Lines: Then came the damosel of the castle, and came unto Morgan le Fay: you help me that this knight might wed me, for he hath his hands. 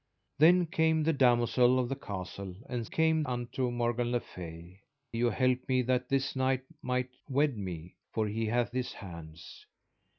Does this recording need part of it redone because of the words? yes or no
no